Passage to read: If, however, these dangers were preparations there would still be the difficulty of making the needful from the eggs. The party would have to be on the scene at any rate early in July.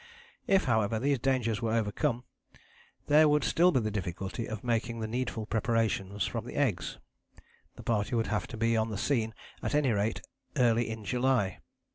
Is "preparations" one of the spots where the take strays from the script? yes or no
yes